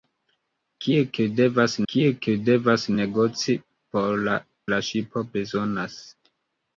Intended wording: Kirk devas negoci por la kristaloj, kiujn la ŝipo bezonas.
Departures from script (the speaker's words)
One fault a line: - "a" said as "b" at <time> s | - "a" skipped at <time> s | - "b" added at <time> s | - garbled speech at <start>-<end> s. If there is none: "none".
- "kirk devas" added at 1.9 s
- "kristaloj kiujn" skipped at 4.4 s